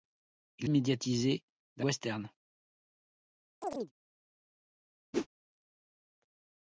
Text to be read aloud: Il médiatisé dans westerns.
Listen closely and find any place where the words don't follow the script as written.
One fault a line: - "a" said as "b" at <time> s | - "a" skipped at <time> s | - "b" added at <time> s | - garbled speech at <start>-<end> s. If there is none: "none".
none